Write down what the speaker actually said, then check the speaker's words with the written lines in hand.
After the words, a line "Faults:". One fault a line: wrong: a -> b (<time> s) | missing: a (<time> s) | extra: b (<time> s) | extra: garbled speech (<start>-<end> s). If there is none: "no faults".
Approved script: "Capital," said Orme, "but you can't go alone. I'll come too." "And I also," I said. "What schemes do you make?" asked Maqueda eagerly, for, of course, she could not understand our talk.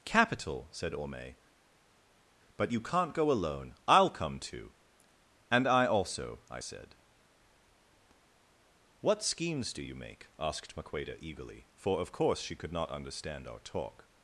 "Capital," said Orme, "but you can't go alone. I'll come too." "And I also," I said. "What schemes do you make?" asked Maqueda eagerly, for, of course, she could not understand our talk.
Faults:
no faults